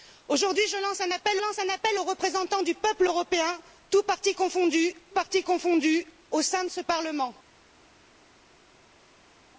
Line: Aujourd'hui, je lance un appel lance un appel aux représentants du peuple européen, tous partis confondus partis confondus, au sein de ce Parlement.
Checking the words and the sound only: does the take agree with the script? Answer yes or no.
yes